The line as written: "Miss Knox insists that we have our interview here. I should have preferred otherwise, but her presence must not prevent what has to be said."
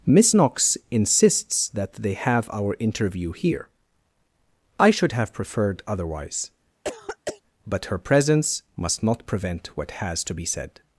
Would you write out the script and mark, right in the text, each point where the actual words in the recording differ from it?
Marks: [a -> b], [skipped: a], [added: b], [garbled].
"Miss Knox insists that [we -> they] have our interview here. I should have preferred otherwise, but her presence must not prevent what has to be said."